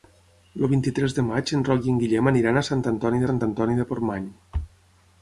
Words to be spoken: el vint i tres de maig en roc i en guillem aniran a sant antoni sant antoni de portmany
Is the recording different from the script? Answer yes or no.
no